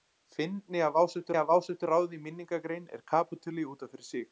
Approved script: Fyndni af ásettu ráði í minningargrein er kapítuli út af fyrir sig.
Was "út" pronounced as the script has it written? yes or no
yes